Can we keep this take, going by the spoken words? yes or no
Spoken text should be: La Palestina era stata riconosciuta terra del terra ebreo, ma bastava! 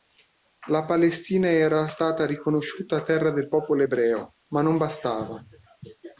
no